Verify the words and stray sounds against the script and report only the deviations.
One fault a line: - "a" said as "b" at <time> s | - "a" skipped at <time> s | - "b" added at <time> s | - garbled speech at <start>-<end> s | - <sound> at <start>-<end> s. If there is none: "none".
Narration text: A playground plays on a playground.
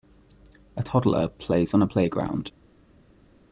- "playground" said as "toddler" at 0.8 s